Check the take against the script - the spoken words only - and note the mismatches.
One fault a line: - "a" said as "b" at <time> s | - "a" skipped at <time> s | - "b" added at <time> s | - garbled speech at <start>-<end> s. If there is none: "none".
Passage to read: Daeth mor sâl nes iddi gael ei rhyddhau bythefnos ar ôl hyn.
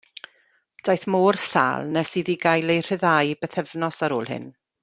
none